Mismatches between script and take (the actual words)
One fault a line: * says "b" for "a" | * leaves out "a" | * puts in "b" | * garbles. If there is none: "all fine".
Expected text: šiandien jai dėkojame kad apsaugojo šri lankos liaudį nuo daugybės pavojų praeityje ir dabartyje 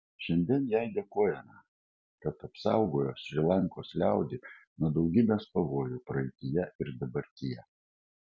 all fine